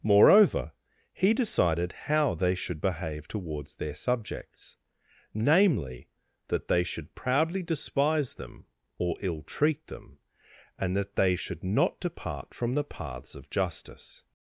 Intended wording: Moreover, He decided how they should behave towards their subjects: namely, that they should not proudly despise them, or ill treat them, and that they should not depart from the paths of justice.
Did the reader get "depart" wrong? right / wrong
right